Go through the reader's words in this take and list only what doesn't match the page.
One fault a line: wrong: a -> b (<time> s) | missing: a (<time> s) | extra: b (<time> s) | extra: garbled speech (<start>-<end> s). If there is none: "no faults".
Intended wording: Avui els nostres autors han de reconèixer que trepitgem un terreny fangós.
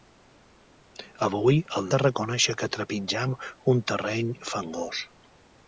missing: nostres autors han (1.9 s)